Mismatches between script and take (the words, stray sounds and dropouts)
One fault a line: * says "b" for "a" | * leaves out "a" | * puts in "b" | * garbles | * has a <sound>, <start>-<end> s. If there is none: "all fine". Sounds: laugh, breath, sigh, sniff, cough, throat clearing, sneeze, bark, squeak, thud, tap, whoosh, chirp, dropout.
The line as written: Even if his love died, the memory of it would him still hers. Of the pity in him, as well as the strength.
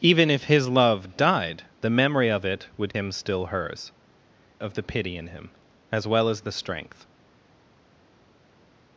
all fine